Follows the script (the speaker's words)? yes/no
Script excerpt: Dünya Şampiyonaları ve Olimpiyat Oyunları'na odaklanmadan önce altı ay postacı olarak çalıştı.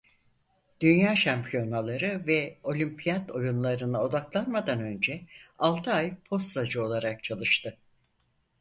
yes